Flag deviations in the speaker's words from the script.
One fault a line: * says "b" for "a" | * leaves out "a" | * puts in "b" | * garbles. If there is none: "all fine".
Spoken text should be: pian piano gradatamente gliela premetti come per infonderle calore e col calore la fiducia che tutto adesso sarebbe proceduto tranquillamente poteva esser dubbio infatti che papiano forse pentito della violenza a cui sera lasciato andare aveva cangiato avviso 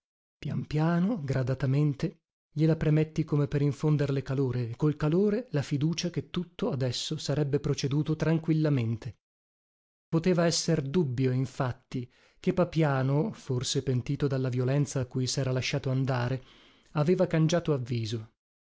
all fine